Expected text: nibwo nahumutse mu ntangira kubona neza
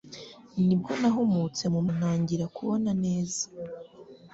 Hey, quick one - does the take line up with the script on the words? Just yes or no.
yes